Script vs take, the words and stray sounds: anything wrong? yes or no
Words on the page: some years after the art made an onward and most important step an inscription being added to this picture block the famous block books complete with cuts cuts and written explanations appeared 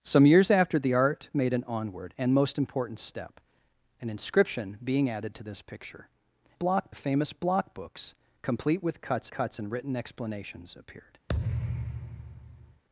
yes